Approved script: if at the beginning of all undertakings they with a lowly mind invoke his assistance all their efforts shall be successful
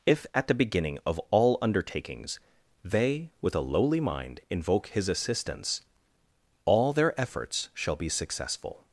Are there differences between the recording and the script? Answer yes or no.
no